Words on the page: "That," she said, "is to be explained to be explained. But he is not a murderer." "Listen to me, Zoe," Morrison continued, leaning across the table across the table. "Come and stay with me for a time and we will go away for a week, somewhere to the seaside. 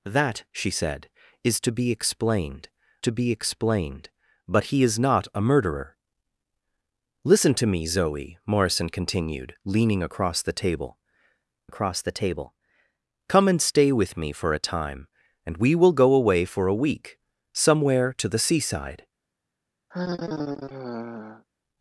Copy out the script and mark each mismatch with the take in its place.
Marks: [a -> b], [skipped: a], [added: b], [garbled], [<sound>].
"That," she said, "is to be explained to be explained. But he is not a murderer." "Listen to me, Zoe," Morrison continued, leaning across the table across the table. "Come and stay with me for a time and we will go away for a week, somewhere to the seaside. [sigh]